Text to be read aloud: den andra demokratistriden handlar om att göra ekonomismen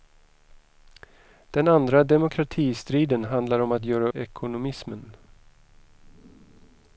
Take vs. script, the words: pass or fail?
pass